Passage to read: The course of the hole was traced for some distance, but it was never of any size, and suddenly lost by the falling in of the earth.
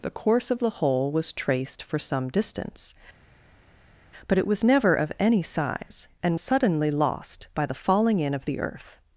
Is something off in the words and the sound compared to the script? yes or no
no